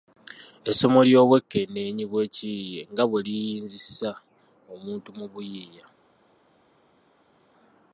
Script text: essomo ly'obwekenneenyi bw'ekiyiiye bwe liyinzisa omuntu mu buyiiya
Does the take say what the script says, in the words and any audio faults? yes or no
no